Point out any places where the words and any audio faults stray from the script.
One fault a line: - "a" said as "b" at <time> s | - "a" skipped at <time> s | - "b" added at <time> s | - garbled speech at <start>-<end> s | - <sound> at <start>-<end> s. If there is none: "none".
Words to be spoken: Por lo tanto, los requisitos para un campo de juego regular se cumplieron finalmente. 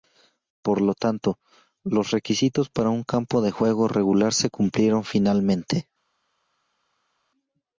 none